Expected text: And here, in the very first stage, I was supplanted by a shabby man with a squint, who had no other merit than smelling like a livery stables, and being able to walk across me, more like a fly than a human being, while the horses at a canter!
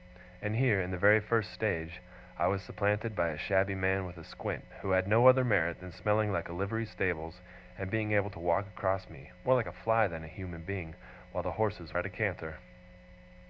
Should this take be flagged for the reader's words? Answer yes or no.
no